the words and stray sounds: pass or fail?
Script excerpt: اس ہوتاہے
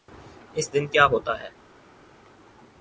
fail